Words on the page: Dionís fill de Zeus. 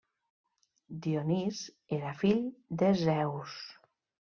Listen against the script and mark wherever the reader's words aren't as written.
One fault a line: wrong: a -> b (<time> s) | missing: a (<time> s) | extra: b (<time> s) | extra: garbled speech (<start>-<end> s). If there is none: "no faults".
extra: era (2.0 s)